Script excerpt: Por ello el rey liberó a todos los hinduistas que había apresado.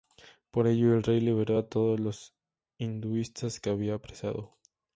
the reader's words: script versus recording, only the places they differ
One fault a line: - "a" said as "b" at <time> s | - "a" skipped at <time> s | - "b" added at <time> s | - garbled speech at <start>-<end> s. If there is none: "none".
none